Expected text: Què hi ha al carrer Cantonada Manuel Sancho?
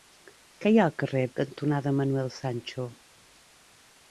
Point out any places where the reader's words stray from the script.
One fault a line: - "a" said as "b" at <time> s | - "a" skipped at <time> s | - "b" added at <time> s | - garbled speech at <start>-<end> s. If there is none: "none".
none